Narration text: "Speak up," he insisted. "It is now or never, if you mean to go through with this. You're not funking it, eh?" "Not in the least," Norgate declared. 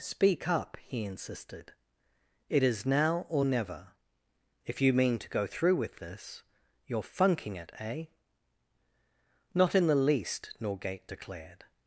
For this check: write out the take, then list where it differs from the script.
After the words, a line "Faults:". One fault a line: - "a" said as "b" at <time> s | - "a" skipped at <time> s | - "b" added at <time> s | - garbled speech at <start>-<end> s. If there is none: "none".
"Speak up," he insisted. "It is now or never, if you mean to go through with this. You're funking it, eh?" "Not in the least," Norgate declared.
Faults:
- "not" skipped at 7.0 s